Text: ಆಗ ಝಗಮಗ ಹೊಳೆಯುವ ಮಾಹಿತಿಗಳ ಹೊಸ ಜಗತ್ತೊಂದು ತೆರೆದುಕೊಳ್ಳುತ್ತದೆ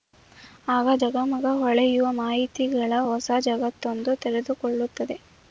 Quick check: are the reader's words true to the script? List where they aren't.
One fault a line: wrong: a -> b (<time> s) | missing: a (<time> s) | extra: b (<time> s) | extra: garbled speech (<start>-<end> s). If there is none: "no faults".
no faults